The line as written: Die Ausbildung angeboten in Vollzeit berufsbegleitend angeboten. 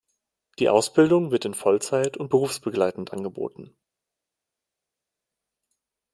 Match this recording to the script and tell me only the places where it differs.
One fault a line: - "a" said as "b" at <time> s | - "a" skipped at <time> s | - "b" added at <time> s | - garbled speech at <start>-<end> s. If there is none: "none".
- "angeboten" said as "wird" at 1.3 s
- "und" added at 2.2 s